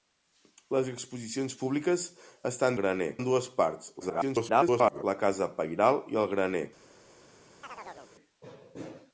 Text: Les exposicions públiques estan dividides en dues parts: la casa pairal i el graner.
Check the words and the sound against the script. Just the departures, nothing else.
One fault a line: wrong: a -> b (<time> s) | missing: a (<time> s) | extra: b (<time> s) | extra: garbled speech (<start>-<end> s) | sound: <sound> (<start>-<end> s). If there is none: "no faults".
wrong: dividides -> graner (2.8 s)
extra: garbled speech (4.0-5.0 s)
sound: chirp (7.6-8.1 s)